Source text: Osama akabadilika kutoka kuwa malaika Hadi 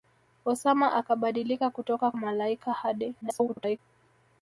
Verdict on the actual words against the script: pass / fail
fail